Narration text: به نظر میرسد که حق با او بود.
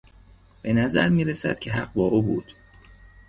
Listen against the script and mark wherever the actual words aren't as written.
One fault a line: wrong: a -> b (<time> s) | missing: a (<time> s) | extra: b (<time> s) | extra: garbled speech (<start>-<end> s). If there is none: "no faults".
no faults